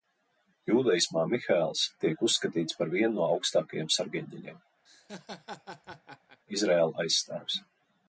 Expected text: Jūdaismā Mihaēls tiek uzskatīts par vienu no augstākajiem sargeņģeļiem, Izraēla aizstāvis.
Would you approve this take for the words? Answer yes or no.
yes